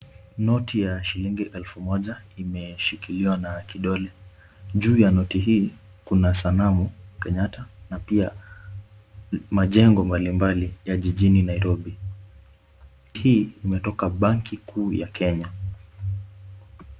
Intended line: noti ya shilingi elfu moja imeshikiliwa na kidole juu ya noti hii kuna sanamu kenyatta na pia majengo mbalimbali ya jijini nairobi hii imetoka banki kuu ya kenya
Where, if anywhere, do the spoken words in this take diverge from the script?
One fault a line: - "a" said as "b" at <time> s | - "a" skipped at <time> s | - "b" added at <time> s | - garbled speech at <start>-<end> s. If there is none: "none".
none